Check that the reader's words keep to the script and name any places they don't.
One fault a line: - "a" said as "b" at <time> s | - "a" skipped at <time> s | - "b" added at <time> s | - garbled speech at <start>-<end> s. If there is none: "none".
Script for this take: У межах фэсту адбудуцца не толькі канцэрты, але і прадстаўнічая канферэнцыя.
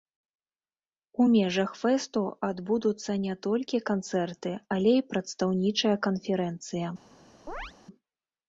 none